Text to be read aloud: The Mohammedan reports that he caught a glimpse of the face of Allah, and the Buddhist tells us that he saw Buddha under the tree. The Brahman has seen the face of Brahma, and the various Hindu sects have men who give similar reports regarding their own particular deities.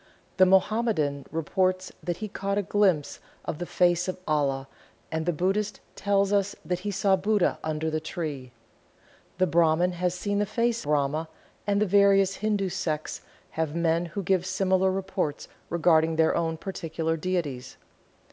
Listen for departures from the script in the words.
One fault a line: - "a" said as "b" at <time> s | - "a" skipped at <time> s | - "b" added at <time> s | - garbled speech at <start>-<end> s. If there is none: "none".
- "of" skipped at 10.9 s